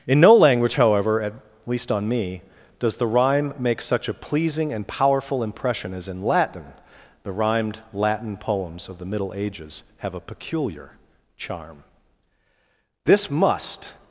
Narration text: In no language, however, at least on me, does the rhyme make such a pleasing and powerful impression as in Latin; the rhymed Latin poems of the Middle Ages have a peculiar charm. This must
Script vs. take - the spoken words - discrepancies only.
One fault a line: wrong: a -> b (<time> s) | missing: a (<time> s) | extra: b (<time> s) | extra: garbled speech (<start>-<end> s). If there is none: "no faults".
no faults